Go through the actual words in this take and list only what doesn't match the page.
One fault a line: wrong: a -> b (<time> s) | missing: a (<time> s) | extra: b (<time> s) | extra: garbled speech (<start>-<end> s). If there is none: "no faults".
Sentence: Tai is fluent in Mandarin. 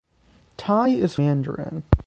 missing: fluent in (1.2 s)